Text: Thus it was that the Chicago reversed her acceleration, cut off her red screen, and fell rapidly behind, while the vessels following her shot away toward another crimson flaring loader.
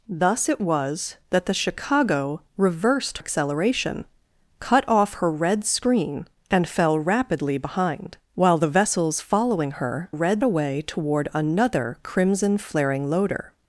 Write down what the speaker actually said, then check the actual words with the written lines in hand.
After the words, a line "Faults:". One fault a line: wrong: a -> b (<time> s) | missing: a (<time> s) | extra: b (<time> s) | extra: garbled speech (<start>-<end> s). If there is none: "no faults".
Thus it was that the Chicago reversed acceleration, cut off her red screen, and fell rapidly behind, while the vessels following her red away toward another crimson flaring loader.
Faults:
missing: her (3.2 s)
wrong: shot -> red (10.1 s)